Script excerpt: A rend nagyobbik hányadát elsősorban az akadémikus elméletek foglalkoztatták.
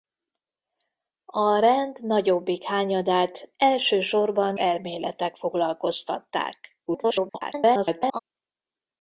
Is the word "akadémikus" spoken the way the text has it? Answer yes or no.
no